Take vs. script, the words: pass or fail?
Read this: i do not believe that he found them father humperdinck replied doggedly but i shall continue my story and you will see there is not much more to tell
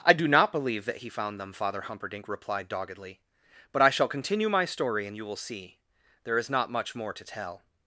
pass